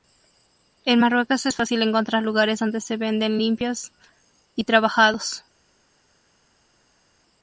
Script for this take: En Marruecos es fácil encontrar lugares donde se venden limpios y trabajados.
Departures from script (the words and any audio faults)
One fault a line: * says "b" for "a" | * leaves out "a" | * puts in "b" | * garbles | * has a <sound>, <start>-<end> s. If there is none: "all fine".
all fine